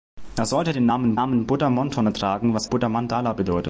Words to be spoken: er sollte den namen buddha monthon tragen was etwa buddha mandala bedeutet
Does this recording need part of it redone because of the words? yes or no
yes